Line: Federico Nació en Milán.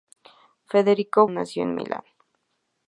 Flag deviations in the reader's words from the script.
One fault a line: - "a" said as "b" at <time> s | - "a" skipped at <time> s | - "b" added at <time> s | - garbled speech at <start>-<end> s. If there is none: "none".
none